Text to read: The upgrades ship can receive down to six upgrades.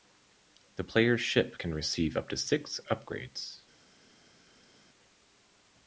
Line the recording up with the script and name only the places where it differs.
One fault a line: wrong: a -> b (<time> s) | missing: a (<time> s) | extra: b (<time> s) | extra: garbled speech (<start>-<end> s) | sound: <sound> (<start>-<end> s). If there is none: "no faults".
wrong: upgrades -> player's (0.8 s)
wrong: down -> up (2.2 s)